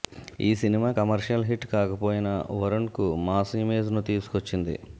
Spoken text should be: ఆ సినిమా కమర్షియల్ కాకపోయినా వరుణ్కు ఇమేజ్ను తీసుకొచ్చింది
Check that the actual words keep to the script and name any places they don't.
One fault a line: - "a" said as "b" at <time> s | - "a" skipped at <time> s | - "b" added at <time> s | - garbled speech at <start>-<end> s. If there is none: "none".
- "ఆ" said as "ఈ" at 0.4 s
- "హిట్" added at 1.5 s
- "మాస్" added at 3.3 s